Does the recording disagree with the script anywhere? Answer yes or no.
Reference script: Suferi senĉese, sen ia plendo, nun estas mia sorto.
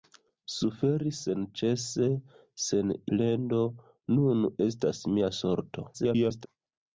yes